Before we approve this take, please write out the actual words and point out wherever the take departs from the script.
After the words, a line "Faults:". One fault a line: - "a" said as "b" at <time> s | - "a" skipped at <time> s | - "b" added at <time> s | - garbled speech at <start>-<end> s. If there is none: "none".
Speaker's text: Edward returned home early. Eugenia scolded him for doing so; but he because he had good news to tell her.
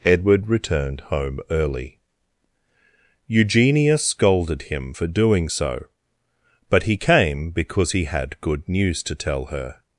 Edward returned home early. Eugenia scolded him for doing so; but he came because he had good news to tell her.
Faults:
- "came" added at 6.9 s